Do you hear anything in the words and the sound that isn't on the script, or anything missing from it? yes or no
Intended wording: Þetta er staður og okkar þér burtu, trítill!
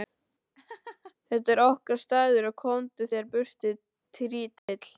yes